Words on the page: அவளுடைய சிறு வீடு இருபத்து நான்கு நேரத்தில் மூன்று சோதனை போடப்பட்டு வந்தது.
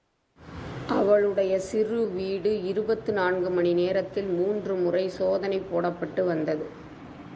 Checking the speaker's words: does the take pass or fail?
fail